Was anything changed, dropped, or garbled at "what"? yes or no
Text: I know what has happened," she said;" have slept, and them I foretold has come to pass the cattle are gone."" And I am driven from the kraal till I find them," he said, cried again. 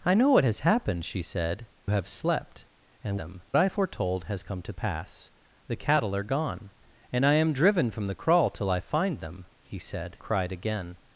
no